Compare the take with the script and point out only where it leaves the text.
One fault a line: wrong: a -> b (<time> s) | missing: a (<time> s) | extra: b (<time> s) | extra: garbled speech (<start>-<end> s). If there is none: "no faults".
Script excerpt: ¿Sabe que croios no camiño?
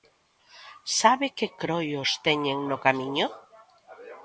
extra: teñen (2.2 s)